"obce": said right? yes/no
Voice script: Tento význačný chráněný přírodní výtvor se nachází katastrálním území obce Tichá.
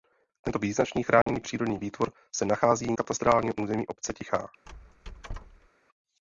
yes